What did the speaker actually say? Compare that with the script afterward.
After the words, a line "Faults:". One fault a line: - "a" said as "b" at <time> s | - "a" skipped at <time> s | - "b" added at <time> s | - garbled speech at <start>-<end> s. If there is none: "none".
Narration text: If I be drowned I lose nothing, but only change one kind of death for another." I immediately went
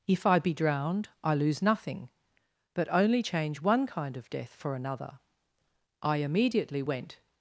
If I be drowned I lose nothing, but only change one kind of death for another." I immediately went
Faults:
none